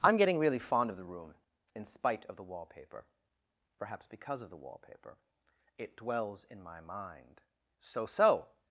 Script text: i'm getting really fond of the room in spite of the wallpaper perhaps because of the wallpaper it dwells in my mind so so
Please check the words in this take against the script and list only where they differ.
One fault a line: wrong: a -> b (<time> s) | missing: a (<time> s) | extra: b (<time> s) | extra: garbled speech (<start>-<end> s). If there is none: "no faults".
no faults